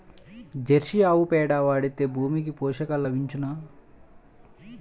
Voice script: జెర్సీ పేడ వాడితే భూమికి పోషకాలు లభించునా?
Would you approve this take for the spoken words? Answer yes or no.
no